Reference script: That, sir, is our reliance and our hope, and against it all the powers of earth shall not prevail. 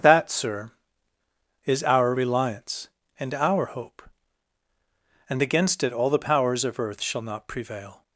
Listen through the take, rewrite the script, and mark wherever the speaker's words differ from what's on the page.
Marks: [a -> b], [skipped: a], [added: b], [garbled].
That, sir, is our reliance and our hope, and against it all the powers of earth shall not prevail.